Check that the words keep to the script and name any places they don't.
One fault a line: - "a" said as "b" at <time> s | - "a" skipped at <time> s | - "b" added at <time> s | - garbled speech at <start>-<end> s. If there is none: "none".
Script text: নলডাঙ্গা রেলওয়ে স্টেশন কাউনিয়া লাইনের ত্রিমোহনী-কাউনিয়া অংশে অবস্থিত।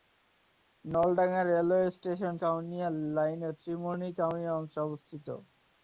none